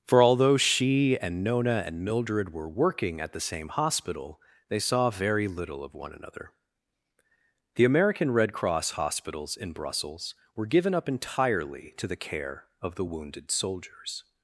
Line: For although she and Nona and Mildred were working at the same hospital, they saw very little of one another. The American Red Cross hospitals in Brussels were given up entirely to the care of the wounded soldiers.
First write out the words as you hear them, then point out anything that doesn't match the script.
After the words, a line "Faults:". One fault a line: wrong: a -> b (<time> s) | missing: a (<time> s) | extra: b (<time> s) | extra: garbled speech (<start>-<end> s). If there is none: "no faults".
For although she and Nona and Mildred were working at the same hospital, they saw very little of one another. The American Red Cross hospitals in Brussels were given up entirely to the care of the wounded soldiers.
Faults:
no faults